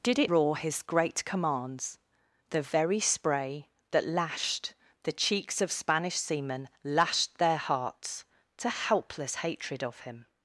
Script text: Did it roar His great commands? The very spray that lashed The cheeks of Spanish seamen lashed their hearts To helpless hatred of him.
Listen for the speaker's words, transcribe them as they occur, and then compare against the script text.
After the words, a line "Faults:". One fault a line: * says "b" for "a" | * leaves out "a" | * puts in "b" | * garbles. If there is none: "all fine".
Did it roar His great commands? The very spray that lashed The cheeks of Spanish seamen lashed their hearts To helpless hatred of him.
Faults:
all fine